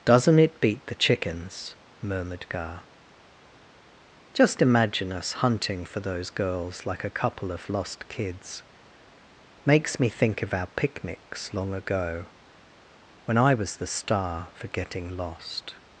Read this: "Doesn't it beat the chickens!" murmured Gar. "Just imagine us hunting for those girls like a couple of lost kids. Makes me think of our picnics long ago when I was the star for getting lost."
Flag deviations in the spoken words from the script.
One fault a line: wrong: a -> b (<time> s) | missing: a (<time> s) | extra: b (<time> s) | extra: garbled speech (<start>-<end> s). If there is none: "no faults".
no faults